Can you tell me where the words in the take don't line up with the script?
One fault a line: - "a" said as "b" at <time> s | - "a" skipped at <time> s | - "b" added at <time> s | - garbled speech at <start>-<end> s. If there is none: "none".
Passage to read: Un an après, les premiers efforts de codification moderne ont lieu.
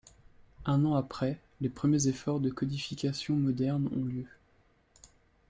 none